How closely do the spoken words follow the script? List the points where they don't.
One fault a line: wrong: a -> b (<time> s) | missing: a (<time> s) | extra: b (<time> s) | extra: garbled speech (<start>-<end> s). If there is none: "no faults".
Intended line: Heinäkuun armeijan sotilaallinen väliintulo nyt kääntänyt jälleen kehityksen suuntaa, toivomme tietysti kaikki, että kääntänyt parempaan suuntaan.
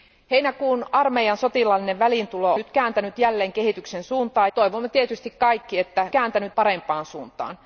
no faults